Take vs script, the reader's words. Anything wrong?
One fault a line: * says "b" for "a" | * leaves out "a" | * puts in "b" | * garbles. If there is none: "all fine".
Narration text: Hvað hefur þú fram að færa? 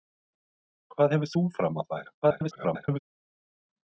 * garbles